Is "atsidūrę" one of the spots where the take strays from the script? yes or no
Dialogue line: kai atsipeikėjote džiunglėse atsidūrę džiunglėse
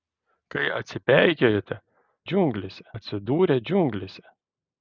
no